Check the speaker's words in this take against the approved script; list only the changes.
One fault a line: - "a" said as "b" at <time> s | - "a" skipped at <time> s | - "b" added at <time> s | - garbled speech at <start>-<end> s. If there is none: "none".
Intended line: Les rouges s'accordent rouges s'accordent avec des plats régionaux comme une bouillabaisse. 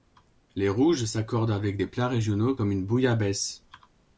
- "rouges s'accordent" skipped at 1.5 s